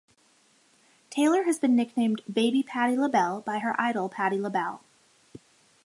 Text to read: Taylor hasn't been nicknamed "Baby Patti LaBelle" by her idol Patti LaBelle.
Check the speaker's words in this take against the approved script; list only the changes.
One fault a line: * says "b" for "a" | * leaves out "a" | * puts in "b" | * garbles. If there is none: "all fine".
* says "has" for "hasn't"